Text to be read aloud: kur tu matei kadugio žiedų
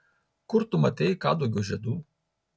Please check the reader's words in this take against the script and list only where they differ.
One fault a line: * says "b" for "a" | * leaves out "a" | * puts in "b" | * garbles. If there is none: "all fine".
all fine